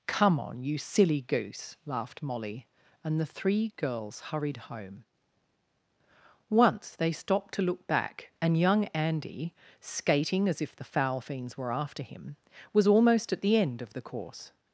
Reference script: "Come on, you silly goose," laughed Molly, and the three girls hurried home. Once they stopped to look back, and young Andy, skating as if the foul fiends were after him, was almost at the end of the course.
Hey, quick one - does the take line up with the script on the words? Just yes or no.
yes